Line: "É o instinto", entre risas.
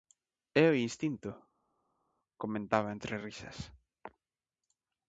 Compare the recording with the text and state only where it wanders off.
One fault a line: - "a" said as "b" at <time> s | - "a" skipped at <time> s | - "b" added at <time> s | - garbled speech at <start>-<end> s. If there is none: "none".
- "comentaba" added at 2.4 s